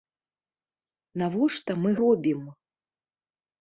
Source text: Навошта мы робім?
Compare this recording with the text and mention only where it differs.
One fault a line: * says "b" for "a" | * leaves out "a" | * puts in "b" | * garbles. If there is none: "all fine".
all fine